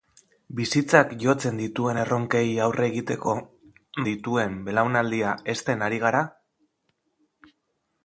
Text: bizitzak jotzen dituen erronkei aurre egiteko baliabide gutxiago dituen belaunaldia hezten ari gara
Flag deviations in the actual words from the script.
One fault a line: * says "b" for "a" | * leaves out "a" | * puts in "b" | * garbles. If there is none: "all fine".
* leaves out "baliabide gutxiago"